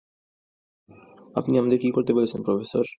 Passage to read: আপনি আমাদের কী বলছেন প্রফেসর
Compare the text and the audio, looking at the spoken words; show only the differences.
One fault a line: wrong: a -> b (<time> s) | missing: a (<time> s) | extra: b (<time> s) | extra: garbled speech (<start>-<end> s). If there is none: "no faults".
extra: করতে (1.9 s)